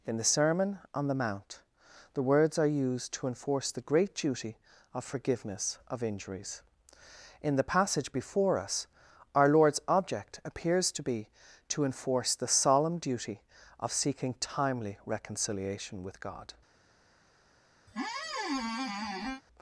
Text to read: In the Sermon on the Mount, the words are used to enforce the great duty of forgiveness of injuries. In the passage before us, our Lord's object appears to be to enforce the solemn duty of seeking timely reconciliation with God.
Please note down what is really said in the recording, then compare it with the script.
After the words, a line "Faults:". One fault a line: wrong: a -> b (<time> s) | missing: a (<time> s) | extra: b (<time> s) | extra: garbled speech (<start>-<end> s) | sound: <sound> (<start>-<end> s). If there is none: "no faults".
In the Sermon on the Mount, the words are used to enforce the great duty of forgiveness of injuries. In the passage before us, our Lord's object appears to be to enforce the solemn duty of seeking timely reconciliation with God.
Faults:
sound: squeak (17.9-19.4 s)